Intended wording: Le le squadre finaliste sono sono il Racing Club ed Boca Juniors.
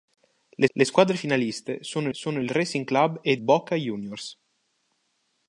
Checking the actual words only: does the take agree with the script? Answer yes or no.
yes